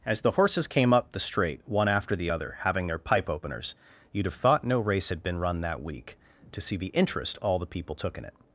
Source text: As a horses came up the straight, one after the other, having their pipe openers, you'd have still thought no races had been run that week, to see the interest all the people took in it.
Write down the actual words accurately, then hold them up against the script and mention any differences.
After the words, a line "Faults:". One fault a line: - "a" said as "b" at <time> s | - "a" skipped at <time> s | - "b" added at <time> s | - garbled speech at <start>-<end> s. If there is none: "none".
As the horses came up the straight, one after the other, having their pipe openers, you'd have thought no race had been run that week, to see the interest all the people took in it.
Faults:
- "a" said as "the" at 0.2 s
- "still" skipped at 4.3 s
- "races" said as "race" at 4.8 s